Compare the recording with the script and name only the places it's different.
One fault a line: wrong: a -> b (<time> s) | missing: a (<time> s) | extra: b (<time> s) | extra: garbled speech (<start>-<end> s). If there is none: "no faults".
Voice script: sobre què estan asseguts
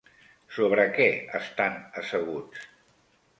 no faults